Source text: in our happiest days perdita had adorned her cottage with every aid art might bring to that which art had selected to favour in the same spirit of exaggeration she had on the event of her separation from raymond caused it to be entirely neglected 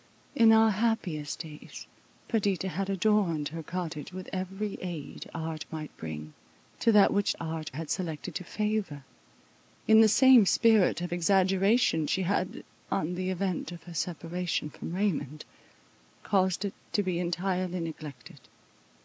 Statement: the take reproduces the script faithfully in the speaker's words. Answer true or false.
true